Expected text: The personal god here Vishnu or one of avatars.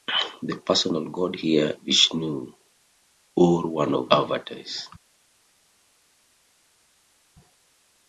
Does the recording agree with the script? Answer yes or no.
yes